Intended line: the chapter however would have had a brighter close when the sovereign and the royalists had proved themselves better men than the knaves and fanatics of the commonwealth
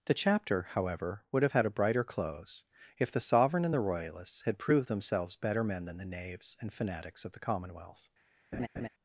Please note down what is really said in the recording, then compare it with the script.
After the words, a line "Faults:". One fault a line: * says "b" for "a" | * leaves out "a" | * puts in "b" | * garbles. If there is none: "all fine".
the chapter however would have had a brighter close if the sovereign and the royalists had proved themselves better men than the knaves and fanatics of the commonwealth
Faults:
* says "if" for "when"